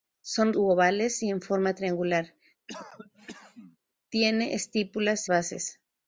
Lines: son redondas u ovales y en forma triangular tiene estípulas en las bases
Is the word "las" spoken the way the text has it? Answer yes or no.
no